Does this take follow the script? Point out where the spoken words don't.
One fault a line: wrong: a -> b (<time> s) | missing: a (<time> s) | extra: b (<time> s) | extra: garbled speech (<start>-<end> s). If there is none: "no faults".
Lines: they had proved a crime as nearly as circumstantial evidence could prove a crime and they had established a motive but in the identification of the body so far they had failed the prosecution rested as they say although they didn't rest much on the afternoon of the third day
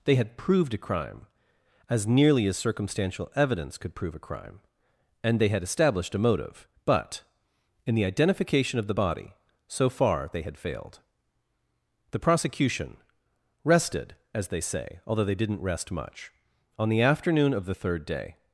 no faults